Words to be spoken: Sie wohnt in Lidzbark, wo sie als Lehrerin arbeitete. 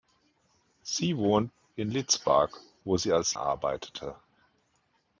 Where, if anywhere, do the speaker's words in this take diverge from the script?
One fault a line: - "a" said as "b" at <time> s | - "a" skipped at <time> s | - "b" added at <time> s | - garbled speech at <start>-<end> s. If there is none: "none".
- "Lehrerin" skipped at 3.3 s